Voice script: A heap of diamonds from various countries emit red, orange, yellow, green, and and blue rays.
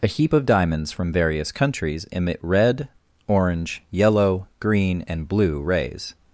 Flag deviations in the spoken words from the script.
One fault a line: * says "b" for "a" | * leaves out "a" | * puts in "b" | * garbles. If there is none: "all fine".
* leaves out "and"